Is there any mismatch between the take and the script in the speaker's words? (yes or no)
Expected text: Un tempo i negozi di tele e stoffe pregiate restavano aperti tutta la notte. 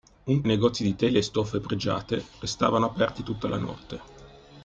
yes